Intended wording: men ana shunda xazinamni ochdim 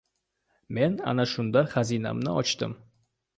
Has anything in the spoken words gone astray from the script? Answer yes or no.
no